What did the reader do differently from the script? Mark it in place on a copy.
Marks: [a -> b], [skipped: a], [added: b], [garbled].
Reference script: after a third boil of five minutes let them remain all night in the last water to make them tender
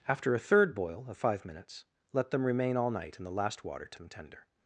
after a third boil of five minutes let them remain all night in the last water to [skipped: make] them tender